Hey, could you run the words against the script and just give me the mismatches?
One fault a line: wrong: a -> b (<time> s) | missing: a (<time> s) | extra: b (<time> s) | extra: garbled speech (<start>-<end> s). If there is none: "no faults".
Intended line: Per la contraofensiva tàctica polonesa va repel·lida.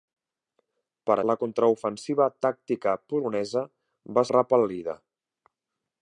no faults